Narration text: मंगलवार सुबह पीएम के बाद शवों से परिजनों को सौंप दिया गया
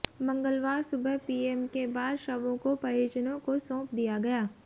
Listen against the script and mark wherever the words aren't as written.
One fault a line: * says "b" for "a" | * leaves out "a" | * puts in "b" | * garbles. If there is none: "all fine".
* says "को" for "से"